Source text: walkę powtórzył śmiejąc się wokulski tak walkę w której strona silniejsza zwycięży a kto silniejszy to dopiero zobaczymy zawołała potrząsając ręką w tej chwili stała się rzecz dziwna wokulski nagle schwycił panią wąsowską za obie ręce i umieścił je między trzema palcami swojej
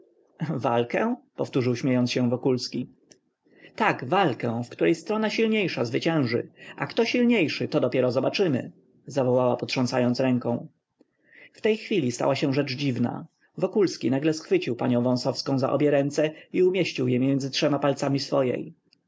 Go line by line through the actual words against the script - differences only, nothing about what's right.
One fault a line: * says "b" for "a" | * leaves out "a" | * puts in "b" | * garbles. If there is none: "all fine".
all fine